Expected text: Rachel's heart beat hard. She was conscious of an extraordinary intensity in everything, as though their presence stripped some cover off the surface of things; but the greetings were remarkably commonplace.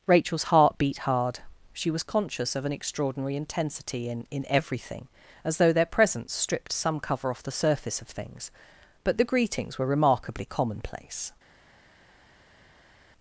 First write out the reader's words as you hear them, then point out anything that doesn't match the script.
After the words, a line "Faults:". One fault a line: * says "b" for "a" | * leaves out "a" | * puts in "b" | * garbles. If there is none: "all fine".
Rachel's heart beat hard. She was conscious of an extraordinary intensity in in everything, as though their presence stripped some cover off the surface of things; but the greetings were remarkably commonplace.
Faults:
* puts in "in"